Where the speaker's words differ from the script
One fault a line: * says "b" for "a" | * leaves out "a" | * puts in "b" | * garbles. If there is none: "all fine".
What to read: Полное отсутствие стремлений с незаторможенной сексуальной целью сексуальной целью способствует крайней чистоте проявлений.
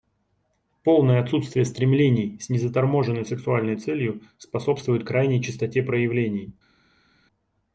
* leaves out "сексуальной целью"